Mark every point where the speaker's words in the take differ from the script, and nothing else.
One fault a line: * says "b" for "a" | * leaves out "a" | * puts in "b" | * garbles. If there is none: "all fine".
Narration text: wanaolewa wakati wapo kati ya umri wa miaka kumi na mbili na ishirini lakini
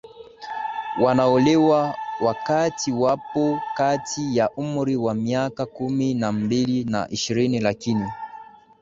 all fine